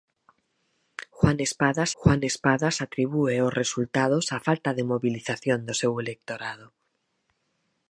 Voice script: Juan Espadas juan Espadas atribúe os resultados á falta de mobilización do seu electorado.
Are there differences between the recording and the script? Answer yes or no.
no